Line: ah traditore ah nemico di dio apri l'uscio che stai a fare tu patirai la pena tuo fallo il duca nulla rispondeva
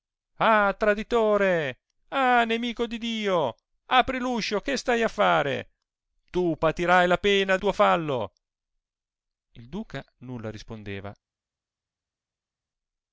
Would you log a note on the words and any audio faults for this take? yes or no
no